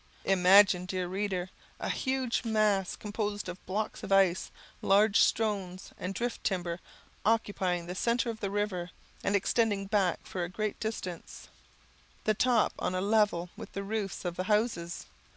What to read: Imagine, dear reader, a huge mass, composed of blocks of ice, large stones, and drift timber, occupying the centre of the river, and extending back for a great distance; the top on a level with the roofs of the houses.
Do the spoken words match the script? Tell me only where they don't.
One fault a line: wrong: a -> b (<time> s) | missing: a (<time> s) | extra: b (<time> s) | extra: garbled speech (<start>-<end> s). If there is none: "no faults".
no faults